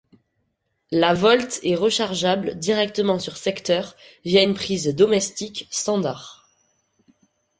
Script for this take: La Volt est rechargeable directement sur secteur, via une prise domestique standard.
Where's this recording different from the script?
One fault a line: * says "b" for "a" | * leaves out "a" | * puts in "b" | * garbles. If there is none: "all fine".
all fine